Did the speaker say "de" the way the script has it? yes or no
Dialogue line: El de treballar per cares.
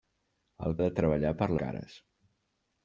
yes